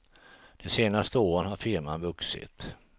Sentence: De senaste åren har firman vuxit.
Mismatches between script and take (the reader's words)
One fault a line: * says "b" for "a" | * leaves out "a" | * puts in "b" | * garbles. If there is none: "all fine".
all fine